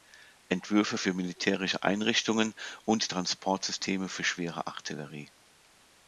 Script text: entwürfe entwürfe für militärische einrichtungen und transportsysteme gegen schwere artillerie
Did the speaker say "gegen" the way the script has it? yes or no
no